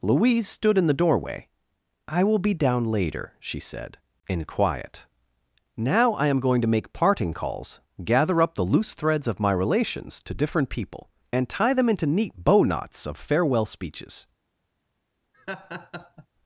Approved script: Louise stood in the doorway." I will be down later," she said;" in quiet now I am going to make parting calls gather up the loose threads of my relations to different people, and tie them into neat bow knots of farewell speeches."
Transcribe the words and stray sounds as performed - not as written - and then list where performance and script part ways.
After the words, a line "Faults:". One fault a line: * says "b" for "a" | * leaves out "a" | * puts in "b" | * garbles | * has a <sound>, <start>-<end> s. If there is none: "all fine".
Louise stood in the doorway." I will be down later," she said;" in quiet now I am going to make parting calls gather up the loose threads of my relations to different people, and tie them into neat bow knots of farewell speeches."
Faults:
* has a laugh, 15.3-16.3 s